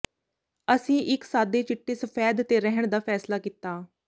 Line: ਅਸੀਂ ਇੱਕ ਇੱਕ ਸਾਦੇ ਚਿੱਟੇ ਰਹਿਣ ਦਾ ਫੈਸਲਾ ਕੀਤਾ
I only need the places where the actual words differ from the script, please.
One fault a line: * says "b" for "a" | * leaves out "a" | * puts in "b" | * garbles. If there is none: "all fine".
* leaves out "ਇੱਕ"
* puts in "ਸਫੈਦ ਤੇ"